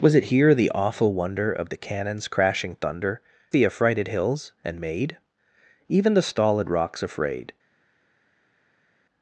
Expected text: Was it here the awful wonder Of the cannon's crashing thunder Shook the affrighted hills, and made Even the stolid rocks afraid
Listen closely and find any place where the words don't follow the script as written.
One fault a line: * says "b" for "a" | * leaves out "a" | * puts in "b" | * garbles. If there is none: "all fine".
* leaves out "Shook"